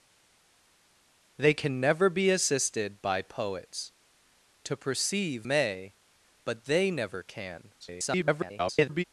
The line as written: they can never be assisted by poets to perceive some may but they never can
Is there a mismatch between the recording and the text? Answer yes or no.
yes